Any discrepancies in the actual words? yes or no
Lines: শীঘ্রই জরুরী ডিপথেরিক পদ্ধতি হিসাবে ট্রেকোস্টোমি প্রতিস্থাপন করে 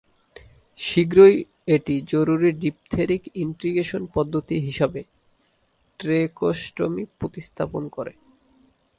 yes